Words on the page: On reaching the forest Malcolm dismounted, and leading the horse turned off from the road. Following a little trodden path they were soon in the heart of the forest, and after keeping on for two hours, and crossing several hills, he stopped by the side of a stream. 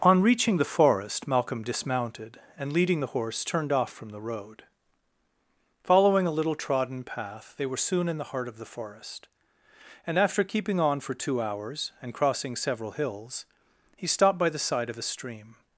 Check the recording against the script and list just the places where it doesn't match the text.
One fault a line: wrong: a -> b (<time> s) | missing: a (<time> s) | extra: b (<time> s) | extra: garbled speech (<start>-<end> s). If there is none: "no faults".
no faults